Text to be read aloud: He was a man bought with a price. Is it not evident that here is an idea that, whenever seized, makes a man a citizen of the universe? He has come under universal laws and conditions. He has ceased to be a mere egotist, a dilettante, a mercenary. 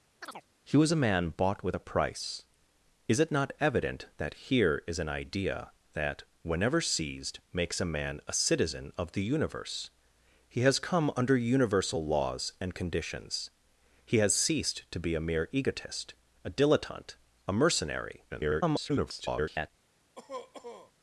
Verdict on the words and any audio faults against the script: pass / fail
fail